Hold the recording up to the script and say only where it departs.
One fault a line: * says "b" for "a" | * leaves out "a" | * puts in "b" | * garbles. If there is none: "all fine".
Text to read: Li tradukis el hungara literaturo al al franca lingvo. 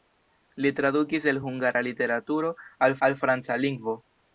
all fine